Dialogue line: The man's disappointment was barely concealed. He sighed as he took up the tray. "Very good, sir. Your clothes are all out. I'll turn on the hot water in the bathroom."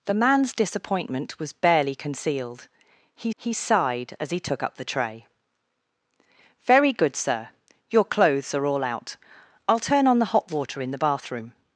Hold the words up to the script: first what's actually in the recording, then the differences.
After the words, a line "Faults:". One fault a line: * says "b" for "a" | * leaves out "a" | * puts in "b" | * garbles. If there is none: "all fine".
The man's disappointment was barely concealed. He he sighed as he took up the tray. "Very good, sir. Your clothes are all out. I'll turn on the hot water in the bathroom."
Faults:
* puts in "he"